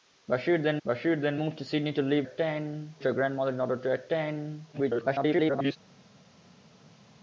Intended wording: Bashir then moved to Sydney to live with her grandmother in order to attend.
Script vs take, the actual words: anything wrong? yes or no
yes